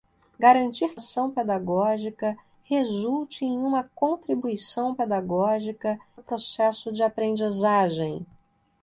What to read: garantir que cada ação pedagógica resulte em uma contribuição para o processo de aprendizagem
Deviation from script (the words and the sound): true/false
true